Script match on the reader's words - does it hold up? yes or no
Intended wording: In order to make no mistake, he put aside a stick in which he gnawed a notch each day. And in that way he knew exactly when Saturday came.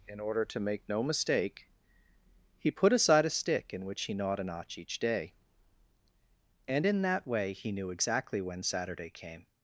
yes